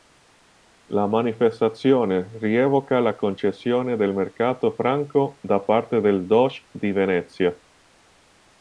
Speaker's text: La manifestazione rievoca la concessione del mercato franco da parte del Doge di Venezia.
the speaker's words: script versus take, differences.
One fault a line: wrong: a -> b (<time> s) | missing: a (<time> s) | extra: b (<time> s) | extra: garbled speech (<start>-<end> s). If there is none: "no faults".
no faults